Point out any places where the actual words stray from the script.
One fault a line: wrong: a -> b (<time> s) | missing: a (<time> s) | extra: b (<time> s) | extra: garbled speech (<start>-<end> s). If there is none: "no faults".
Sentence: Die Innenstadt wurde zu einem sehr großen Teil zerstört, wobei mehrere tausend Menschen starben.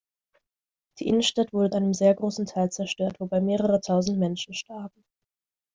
missing: zu (1.7 s)